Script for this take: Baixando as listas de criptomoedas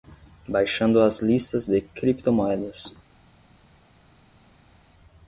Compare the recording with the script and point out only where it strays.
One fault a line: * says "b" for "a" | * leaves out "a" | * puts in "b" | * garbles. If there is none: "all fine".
all fine